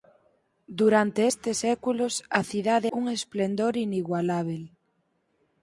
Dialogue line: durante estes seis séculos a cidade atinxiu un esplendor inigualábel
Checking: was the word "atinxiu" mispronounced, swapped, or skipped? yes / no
yes